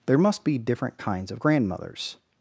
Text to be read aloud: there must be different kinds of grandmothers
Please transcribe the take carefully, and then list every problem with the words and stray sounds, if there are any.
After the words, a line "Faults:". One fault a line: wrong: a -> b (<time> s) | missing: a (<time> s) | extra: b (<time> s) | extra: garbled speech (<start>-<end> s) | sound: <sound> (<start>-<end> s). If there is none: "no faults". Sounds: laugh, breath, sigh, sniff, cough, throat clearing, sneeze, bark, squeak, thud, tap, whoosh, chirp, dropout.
there must be different kinds of grandmothers
Faults:
no faults